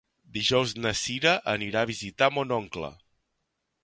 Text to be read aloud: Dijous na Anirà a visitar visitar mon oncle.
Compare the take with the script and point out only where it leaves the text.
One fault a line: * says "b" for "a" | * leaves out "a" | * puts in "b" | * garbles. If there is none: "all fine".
* puts in "Cira"
* leaves out "visitar"